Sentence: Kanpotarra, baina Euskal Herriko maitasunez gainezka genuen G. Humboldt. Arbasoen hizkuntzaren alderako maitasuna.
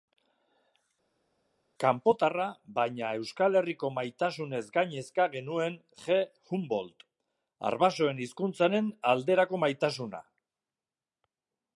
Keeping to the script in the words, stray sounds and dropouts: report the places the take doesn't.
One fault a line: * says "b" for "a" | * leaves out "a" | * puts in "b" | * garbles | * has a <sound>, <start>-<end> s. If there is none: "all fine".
all fine